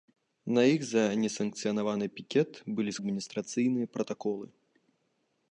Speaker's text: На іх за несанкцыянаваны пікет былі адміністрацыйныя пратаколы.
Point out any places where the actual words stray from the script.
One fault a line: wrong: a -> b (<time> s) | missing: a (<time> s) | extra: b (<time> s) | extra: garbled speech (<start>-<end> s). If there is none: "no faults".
no faults